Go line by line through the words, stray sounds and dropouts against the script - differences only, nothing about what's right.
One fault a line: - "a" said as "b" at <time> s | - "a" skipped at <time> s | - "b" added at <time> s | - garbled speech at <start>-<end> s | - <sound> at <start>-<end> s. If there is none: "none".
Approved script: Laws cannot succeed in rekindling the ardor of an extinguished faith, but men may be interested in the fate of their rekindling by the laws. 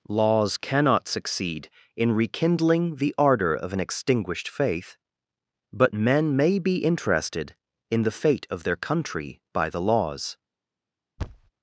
- "rekindling" said as "country" at 8.8 s
- thud at 11.2-11.5 s